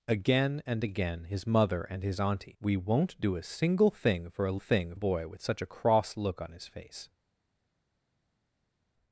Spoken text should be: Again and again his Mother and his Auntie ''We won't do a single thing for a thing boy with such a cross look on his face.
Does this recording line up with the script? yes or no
yes